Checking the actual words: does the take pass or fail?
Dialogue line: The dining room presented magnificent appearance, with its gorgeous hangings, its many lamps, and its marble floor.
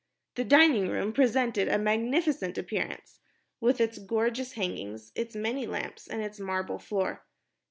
fail